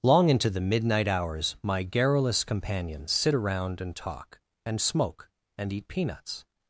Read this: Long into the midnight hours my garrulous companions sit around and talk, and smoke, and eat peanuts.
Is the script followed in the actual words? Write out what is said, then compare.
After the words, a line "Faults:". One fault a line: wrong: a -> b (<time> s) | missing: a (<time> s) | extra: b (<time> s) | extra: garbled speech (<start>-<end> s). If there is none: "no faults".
Long into the midnight hours my garrulous companions sit around and talk, and smoke, and eat peanuts.
Faults:
no faults